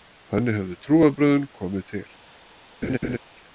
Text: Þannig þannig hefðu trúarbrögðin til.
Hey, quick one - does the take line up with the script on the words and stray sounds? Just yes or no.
no